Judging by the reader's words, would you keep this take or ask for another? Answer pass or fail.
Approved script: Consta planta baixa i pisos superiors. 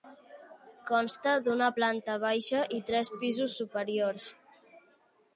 fail